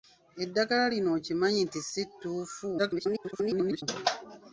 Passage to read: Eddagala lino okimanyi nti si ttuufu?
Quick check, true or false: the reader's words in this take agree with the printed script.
false